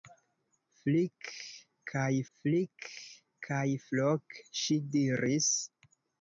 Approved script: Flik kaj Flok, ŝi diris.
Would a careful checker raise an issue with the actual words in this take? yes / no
yes